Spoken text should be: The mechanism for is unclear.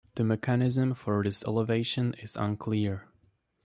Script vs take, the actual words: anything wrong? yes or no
yes